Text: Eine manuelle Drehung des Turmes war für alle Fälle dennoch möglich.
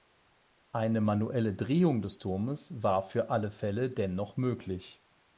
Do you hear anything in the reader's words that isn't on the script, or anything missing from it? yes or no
no